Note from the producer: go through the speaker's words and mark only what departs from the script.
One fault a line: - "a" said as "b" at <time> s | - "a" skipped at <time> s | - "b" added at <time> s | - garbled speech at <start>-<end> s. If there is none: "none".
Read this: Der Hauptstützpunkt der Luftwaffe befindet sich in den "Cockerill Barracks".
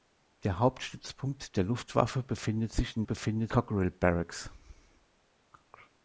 - "den" said as "befindet" at 3.0 s